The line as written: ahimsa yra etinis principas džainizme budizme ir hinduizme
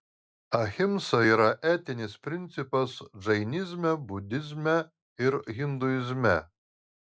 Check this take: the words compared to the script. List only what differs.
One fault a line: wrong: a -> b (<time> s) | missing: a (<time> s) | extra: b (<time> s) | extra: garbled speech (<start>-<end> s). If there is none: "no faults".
no faults